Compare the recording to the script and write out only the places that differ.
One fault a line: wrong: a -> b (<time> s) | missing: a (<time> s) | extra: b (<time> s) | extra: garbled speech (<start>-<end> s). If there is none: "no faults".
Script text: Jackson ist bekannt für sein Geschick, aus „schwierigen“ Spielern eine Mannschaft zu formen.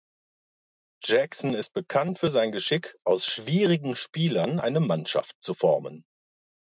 no faults